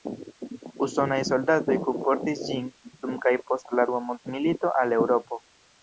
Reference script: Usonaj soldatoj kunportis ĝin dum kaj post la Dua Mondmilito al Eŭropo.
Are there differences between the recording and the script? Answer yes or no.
no